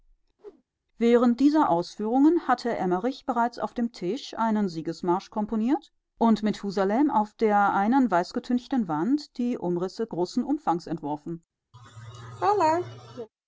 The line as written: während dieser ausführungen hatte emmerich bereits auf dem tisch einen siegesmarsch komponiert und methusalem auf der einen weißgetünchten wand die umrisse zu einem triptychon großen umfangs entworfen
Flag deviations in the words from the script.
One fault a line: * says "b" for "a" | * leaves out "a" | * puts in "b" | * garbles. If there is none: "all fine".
* leaves out "zu einem triptychon"